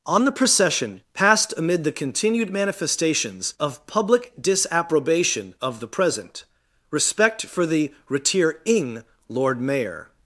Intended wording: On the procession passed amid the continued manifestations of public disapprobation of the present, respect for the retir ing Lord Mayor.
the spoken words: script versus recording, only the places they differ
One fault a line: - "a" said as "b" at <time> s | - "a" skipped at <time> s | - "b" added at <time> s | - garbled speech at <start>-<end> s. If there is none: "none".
none